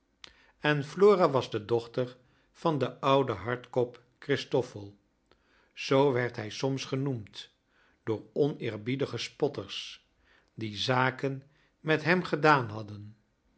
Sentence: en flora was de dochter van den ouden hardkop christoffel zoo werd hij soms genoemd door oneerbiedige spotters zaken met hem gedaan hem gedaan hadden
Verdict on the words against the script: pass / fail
fail